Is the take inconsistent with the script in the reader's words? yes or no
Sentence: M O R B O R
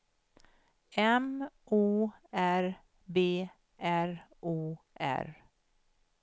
yes